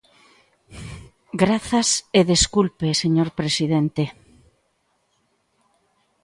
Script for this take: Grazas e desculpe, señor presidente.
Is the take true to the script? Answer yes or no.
yes